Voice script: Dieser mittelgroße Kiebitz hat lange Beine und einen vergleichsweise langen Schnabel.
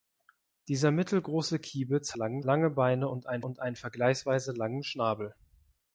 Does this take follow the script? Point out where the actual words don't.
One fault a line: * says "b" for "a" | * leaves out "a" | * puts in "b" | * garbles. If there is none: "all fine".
* says "langen" for "hat"
* puts in "und einen"